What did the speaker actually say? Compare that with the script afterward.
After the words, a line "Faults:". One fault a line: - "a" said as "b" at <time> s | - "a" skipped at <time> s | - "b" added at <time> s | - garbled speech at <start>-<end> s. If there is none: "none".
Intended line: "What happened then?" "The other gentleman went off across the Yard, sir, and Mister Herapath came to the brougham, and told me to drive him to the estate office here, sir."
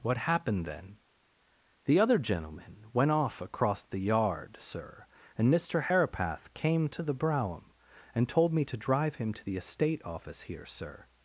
"What happened then?" "The other gentleman went off across the Yard, sir, and Mister Herapath came to the brougham, and told me to drive him to the estate office here, sir."
Faults:
none